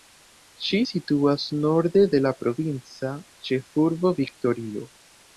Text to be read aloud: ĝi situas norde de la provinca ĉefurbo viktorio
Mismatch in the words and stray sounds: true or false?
false